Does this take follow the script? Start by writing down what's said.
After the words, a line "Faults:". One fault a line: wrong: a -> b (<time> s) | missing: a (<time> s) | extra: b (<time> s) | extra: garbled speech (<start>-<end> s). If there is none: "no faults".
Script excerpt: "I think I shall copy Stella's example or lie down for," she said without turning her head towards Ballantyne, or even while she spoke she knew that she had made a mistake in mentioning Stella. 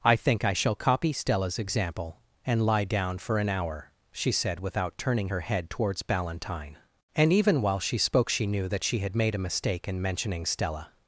"I think I shall copy Stella's example and lie down for an hour," she said without turning her head towards Ballantyne, and even while she spoke she knew that she had made a mistake in mentioning Stella.
Faults:
wrong: or -> and (2.4 s)
extra: an hour (3.4 s)
wrong: or -> and (7.2 s)